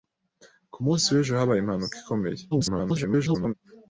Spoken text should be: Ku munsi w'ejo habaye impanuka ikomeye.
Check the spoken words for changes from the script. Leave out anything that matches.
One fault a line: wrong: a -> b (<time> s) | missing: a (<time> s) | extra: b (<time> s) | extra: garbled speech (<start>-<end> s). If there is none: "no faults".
extra: garbled speech (2.5-3.5 s)